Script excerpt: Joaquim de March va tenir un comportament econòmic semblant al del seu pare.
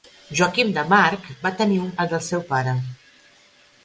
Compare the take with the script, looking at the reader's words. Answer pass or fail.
fail